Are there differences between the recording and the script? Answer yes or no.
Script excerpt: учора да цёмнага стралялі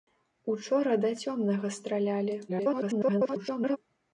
yes